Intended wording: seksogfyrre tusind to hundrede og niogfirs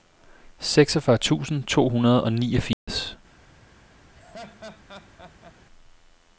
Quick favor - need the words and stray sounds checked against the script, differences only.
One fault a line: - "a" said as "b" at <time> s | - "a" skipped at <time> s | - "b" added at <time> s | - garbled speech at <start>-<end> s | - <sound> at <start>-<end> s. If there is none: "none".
- dropout at 2.7-2.9 s
- laugh at 4.1-5.6 s